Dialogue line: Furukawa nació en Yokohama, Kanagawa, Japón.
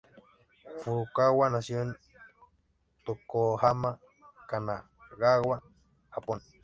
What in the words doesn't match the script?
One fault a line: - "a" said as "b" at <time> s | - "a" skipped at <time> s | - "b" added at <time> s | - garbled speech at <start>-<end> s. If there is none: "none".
none